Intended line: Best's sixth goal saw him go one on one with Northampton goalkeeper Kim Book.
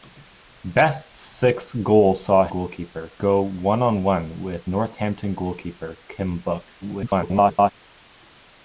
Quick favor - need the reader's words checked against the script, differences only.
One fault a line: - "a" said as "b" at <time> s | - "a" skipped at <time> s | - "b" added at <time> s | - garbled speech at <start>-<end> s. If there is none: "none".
- "him" said as "goalkeeper" at 2.5 s
- garbled speech at 6.8-7.7 s